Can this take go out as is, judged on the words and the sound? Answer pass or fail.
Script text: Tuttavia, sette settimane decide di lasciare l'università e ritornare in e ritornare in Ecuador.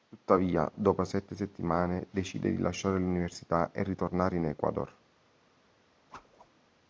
fail